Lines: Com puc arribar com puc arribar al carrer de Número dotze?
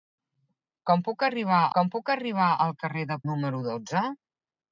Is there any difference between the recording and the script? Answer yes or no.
no